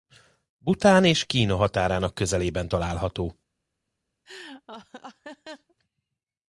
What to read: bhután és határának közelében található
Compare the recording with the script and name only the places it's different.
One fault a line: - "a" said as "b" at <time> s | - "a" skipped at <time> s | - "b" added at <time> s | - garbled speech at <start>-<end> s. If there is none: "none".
- "kína" added at 1.2 s